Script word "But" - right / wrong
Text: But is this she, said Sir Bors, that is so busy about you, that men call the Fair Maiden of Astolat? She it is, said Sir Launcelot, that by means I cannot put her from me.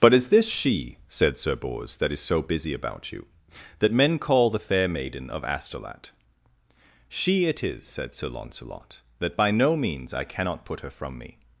right